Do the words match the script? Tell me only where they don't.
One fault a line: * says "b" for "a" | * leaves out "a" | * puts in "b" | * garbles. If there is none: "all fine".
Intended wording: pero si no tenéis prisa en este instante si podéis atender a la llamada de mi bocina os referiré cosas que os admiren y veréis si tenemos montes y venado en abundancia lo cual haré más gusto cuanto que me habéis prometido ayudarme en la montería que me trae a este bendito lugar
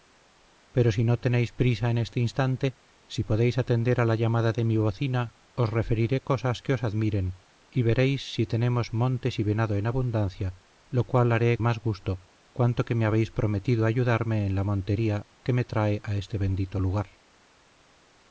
all fine